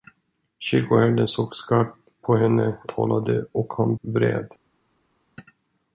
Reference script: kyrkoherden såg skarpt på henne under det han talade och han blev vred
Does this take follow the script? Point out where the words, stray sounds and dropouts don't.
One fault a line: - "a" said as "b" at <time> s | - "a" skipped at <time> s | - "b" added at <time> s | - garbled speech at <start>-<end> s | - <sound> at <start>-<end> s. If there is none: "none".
- "under det han" skipped at 2.8 s
- "blev" skipped at 4.0 s